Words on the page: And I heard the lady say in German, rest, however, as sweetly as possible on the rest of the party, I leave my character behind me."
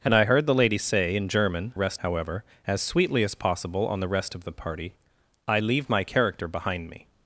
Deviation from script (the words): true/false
false